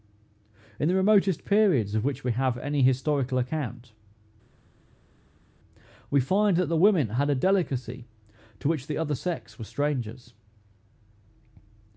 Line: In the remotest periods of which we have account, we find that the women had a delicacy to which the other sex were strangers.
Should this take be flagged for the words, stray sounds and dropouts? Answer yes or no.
yes